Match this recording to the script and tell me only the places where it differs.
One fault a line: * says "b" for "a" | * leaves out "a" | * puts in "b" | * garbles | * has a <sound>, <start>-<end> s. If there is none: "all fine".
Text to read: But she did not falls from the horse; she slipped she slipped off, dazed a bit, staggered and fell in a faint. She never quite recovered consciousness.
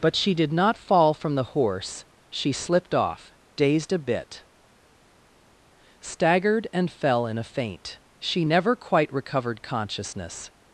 * says "fall" for "falls"
* leaves out "she slipped"